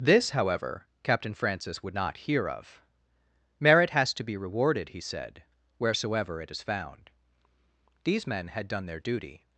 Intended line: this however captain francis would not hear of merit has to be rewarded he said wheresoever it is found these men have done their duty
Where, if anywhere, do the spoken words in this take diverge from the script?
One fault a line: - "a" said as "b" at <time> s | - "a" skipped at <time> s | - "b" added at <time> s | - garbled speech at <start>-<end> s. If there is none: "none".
- "have" said as "had" at 8.5 s